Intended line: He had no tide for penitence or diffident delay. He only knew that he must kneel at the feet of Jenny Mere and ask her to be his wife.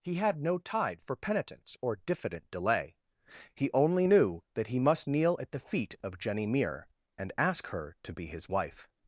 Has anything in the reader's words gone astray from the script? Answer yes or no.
no